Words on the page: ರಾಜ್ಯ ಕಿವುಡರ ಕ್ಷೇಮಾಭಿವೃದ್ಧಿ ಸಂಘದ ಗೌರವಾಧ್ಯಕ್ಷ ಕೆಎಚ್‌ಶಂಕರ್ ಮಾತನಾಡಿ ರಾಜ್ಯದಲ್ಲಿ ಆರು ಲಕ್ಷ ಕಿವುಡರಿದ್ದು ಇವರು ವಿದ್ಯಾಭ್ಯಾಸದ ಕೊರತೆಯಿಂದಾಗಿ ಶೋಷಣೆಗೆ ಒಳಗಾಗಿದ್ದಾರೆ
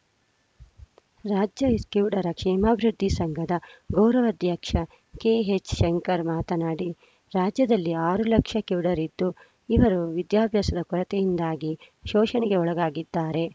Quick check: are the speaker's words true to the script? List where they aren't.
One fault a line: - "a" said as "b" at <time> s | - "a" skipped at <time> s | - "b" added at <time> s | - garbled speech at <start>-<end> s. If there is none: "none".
none